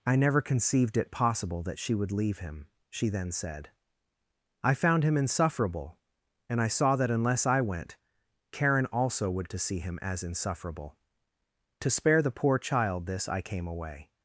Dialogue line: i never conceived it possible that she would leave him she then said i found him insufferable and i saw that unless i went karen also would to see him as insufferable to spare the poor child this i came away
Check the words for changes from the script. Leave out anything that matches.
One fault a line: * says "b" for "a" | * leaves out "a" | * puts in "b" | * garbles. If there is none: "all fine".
all fine